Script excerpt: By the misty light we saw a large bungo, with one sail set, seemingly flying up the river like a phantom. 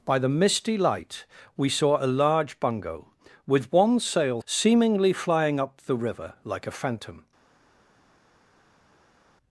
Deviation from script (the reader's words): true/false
true